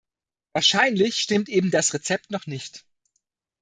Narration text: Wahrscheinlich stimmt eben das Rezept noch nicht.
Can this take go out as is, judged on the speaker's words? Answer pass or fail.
pass